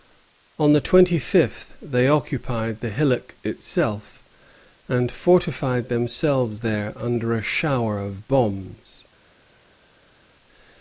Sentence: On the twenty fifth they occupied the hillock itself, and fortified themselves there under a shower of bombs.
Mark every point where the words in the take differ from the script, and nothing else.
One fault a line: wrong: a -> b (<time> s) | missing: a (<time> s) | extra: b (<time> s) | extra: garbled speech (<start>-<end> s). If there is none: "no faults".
no faults